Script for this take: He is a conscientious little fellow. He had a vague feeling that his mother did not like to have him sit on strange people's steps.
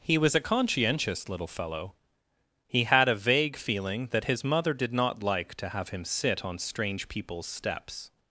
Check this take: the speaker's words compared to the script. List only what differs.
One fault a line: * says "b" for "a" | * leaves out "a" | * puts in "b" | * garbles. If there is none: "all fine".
* says "was" for "is"